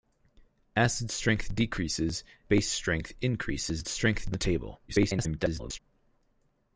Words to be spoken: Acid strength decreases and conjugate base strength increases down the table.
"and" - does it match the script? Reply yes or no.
no